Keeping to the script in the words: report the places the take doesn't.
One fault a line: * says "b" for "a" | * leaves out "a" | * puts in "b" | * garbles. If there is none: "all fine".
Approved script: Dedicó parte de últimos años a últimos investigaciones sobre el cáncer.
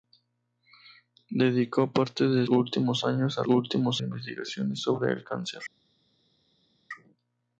all fine